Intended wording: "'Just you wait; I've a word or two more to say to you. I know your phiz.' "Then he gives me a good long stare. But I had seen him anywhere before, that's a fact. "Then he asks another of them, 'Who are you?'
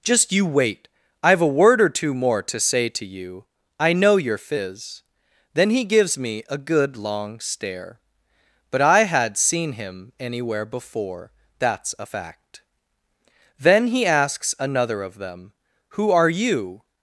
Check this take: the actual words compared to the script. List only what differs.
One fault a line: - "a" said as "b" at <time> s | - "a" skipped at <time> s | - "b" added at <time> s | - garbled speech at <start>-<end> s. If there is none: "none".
none